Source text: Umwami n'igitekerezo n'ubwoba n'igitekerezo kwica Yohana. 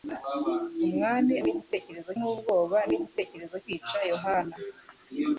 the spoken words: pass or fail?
pass